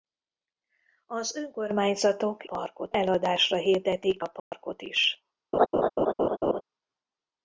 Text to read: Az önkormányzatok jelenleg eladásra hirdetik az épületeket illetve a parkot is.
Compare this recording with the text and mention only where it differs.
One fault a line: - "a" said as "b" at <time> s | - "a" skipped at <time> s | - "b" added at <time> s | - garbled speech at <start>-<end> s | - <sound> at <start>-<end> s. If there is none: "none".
- "jelenleg" said as "parkot" at 2.4 s
- "az épületeket illetve" skipped at 4.2 s
- dropout at 4.4-4.5 s
- laugh at 5.5-6.6 s